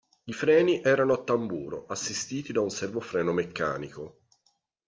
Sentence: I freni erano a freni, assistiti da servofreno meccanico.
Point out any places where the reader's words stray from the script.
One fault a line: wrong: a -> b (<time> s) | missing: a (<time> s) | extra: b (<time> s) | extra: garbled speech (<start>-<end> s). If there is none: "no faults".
wrong: freni -> tamburo (1.2 s)
extra: un (2.6 s)